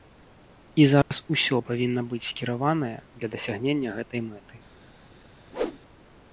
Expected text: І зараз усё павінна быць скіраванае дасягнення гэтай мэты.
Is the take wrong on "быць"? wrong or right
right